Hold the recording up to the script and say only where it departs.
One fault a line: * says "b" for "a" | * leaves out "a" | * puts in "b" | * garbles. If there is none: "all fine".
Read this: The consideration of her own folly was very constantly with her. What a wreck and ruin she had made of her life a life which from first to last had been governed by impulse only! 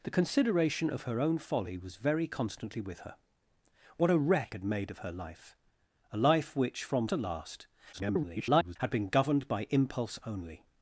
* leaves out "and ruin she"
* leaves out "first"
* garbles